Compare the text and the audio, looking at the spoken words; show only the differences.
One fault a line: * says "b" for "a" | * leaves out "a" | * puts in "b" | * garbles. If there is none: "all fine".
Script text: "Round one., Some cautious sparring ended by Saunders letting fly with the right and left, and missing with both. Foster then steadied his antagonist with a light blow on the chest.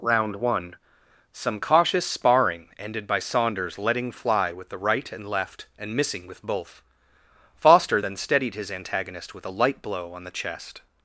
all fine